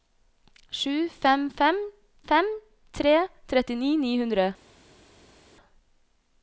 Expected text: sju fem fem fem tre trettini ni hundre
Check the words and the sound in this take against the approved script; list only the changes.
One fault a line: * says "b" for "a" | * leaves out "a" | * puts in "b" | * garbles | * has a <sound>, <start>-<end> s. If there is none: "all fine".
all fine